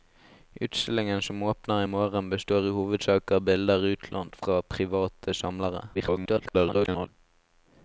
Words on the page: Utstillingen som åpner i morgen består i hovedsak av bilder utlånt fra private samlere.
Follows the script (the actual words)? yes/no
no